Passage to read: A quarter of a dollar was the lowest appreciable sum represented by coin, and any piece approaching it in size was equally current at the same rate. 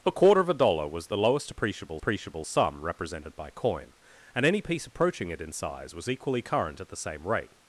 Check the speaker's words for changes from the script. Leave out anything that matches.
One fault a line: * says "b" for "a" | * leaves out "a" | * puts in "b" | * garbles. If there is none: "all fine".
* puts in "appreciable"